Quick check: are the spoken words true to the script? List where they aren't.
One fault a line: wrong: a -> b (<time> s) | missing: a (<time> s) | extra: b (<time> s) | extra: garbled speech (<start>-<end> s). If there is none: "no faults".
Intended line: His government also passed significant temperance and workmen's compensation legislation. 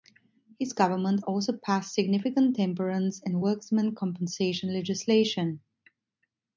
no faults